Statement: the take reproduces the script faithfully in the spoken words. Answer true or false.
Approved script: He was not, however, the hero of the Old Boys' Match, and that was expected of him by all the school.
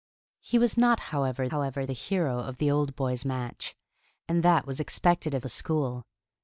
false